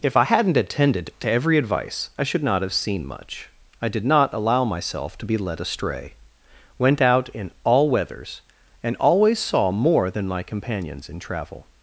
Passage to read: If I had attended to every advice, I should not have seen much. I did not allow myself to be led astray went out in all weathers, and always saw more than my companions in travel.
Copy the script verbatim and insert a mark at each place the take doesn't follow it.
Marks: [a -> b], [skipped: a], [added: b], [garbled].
If I [had -> hadn't] attended to every advice, I should not have seen much. I did not allow myself to be led astray went out in all weathers, and always saw more than my companions in travel.